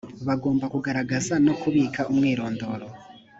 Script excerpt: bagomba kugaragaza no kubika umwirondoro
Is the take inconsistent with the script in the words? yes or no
no